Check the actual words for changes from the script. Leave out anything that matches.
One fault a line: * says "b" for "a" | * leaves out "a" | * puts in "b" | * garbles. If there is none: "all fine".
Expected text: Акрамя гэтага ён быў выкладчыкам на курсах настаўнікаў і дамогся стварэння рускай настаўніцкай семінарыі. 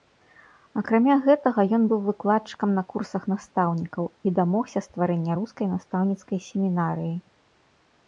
all fine